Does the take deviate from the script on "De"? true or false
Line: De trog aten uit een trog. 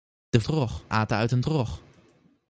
false